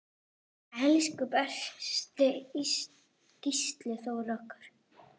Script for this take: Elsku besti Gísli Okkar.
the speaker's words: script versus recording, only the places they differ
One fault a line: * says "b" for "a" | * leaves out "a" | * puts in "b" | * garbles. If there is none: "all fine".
* puts in "Þór"